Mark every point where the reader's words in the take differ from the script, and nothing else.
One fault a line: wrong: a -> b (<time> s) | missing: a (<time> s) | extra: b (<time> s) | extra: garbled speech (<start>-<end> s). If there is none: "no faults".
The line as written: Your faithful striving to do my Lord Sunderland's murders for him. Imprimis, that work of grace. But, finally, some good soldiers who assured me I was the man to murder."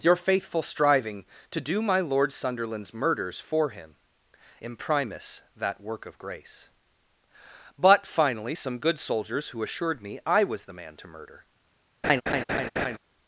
no faults